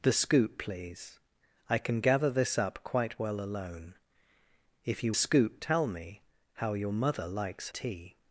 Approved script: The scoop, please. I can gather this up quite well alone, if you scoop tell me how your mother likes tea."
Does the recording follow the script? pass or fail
pass